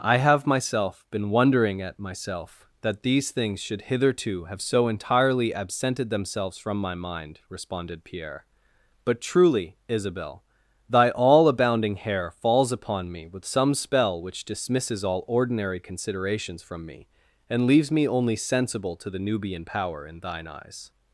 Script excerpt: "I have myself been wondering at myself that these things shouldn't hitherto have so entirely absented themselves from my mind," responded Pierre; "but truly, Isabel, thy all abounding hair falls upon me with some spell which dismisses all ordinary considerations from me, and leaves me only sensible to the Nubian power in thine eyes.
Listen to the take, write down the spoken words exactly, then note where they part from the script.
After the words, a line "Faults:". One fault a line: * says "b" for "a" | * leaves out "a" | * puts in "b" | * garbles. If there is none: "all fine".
"I have myself been wondering at myself that these things should hitherto have so entirely absented themselves from my mind," responded Pierre; "but truly, Isabel, thy all abounding hair falls upon me with some spell which dismisses all ordinary considerations from me, and leaves me only sensible to the Nubian power in thine eyes.
Faults:
* says "should" for "shouldn't"